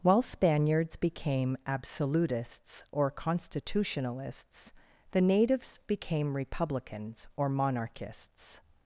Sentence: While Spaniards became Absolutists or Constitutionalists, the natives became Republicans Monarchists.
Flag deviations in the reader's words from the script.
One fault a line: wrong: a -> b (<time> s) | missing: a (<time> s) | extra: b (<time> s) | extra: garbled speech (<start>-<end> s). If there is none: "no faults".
extra: or (7.4 s)